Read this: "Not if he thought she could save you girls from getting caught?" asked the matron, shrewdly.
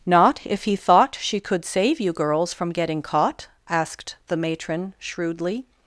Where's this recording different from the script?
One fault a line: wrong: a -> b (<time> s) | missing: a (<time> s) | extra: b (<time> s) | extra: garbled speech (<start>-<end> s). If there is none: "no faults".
no faults